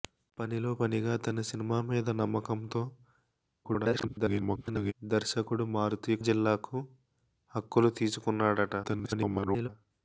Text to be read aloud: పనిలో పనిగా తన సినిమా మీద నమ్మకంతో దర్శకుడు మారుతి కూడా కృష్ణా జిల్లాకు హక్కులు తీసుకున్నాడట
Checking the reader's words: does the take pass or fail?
fail